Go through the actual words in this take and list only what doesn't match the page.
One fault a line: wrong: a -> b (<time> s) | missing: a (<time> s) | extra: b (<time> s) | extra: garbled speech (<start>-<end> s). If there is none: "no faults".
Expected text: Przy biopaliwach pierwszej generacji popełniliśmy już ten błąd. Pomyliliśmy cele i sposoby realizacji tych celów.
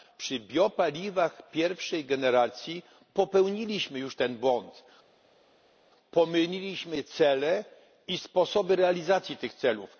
no faults